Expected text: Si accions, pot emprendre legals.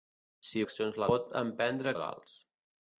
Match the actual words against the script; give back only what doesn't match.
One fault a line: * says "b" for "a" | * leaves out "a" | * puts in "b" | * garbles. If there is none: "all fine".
all fine